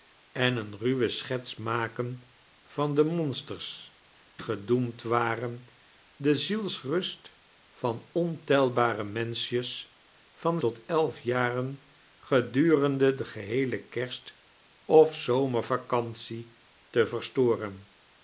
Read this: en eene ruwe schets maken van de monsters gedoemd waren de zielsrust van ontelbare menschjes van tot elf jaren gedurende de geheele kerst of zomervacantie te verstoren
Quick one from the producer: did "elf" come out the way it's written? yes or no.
yes